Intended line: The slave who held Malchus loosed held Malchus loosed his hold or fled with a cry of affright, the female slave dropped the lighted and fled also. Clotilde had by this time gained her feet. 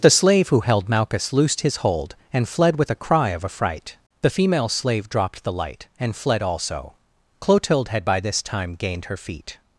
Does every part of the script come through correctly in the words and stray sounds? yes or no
no